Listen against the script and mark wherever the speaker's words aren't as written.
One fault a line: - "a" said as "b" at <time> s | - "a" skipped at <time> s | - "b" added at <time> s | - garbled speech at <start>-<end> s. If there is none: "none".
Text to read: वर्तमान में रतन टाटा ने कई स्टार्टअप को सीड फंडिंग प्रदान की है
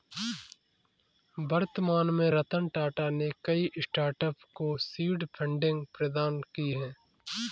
none